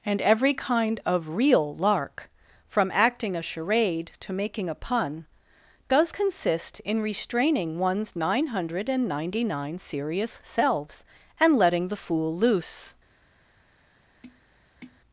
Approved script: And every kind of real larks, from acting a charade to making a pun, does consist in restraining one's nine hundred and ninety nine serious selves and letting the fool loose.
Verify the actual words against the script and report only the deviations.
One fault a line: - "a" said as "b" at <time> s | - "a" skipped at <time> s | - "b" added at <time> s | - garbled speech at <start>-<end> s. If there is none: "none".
- "larks" said as "lark" at 1.8 s